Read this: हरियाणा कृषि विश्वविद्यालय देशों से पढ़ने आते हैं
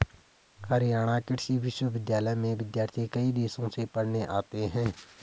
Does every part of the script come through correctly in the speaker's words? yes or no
no